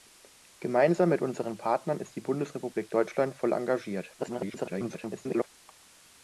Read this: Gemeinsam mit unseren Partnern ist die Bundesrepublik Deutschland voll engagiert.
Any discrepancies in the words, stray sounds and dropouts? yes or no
yes